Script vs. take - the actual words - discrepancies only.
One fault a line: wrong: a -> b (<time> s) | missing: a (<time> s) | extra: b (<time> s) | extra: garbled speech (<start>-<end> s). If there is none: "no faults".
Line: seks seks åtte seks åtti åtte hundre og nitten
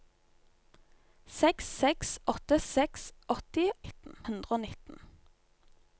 wrong: åtte -> nitten (3.8 s)